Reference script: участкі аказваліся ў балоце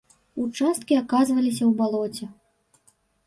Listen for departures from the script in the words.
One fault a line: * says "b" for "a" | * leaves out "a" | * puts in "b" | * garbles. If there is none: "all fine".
all fine